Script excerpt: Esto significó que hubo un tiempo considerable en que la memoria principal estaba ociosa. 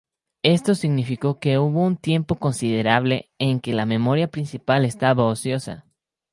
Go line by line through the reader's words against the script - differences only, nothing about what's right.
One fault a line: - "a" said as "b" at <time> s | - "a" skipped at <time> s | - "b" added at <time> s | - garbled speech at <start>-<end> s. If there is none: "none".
none